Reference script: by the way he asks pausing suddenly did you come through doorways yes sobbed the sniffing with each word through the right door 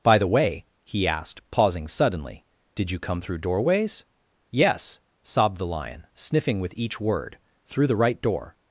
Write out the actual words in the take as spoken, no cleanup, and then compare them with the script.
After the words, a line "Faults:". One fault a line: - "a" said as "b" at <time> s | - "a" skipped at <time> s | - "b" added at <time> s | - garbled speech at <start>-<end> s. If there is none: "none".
by the way he asked pausing suddenly did you come through doorways yes sobbed the lion sniffing with each word through the right door
Faults:
- "asks" said as "asked" at 1.1 s
- "lion" added at 5.7 s